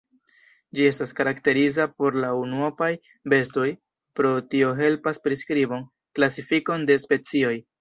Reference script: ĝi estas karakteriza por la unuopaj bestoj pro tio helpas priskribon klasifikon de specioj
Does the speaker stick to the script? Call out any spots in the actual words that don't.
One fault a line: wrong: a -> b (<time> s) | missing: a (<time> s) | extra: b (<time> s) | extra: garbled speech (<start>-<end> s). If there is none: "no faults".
no faults